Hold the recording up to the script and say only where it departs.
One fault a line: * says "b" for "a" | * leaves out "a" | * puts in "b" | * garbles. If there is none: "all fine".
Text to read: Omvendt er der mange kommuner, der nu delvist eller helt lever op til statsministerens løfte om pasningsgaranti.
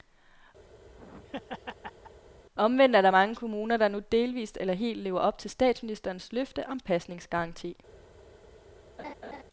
all fine